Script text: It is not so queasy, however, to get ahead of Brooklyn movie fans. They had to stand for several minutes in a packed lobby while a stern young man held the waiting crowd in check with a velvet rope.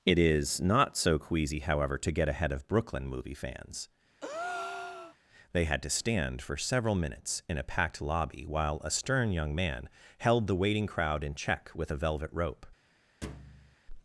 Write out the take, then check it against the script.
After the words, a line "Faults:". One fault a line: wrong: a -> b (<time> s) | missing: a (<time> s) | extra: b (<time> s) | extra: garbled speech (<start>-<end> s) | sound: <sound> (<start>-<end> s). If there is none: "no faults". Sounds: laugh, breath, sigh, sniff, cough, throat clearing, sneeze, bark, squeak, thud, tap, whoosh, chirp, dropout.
It is not so queasy, however, to get ahead of Brooklyn movie fans. They had to stand for several minutes in a packed lobby while a stern young man held the waiting crowd in check with a velvet rope.
Faults:
sound: breath (4.2-5.2 s)
sound: thud (13.2-13.8 s)